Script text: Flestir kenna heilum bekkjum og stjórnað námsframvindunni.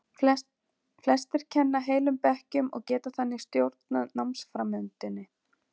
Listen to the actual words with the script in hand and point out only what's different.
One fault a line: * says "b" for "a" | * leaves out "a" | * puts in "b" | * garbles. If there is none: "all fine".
* puts in "geta þannig"